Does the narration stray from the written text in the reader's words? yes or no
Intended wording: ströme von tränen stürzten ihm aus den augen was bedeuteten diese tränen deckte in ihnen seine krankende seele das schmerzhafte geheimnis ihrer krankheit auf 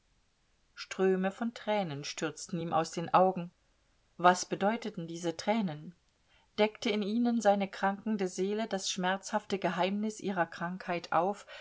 no